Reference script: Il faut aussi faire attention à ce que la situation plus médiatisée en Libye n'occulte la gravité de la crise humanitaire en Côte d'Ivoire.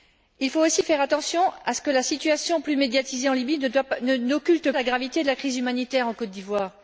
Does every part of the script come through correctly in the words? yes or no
yes